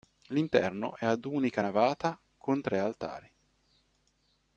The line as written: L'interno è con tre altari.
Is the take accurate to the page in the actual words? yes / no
no